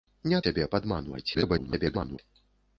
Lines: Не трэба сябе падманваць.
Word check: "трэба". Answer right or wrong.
wrong